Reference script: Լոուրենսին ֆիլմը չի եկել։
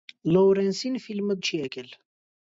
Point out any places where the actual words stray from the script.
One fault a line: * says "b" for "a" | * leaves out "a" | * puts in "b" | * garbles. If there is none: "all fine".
all fine